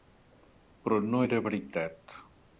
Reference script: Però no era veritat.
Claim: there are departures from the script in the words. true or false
false